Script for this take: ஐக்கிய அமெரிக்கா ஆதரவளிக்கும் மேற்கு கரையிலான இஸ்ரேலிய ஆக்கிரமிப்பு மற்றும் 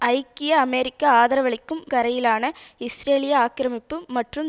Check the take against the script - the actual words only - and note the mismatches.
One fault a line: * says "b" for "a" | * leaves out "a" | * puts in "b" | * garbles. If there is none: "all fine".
* leaves out "மேற்கு"